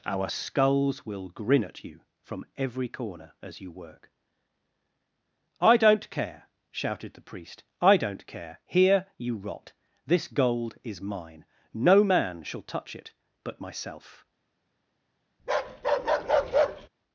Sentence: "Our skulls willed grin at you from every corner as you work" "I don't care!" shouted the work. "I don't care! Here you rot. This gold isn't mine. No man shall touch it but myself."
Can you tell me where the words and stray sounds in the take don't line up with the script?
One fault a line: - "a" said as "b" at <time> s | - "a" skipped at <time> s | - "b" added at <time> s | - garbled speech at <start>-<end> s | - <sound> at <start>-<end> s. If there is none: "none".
- "willed" said as "will" at 1.0 s
- "work" said as "priest" at 7.3 s
- "isn't" said as "is" at 10.8 s
- bark at 15.4-16.9 s